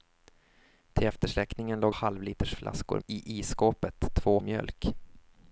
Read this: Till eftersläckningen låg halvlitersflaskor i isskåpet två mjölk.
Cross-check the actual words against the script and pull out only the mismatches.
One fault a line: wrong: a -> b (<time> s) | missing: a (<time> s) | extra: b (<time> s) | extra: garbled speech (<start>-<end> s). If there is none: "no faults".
no faults